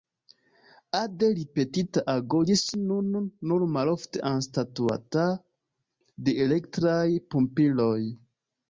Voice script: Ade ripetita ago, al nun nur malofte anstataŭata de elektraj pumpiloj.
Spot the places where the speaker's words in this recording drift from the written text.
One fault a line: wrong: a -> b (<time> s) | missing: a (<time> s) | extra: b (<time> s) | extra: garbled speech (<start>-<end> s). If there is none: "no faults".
wrong: al -> ĝis (2.5 s)